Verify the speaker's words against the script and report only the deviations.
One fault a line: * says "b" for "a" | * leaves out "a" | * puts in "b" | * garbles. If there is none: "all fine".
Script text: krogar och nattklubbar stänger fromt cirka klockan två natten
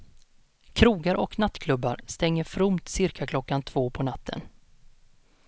* puts in "på"